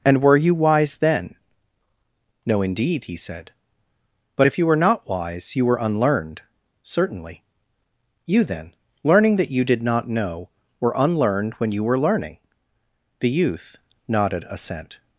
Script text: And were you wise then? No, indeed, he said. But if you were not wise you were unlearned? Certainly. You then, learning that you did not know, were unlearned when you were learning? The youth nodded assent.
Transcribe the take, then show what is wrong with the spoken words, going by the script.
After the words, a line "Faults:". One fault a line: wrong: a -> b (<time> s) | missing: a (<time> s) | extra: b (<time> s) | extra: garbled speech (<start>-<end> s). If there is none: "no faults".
And were you wise then? No, indeed, he said. But if you were not wise you were unlearned? Certainly. You then, learning that you did not know, were unlearned when you were learning? The youth nodded assent.
Faults:
no faults